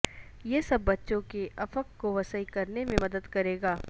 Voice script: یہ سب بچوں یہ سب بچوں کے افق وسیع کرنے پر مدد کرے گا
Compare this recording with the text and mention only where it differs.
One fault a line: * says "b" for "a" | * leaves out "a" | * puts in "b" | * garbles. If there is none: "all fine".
* leaves out "یہ سب بچوں"
* puts in "کو"
* says "میں" for "پر"